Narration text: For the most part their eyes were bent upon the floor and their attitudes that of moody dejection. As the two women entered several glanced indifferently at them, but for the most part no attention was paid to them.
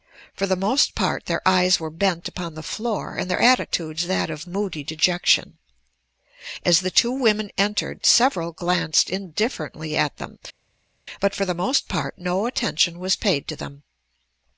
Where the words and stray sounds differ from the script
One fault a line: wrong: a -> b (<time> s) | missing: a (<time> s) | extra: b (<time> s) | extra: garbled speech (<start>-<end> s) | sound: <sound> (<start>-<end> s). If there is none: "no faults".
no faults